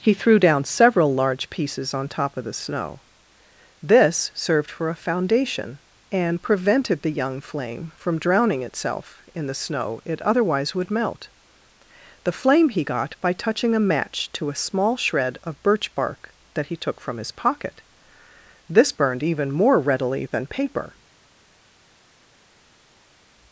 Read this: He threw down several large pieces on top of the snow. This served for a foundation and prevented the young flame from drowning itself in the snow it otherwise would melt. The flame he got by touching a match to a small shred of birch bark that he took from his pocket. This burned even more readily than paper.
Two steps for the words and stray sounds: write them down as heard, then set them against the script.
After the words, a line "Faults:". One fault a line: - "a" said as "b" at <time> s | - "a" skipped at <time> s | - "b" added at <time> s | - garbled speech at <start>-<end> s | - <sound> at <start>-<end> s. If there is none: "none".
He threw down several large pieces on top of the snow. This served for a foundation and prevented the young flame from drowning itself in the snow it otherwise would melt. The flame he got by touching a match to a small shred of birch bark that he took from his pocket. This burned even more readily than paper.
Faults:
none